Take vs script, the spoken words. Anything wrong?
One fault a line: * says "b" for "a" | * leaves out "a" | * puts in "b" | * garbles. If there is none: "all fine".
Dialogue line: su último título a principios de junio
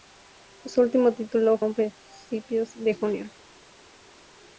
all fine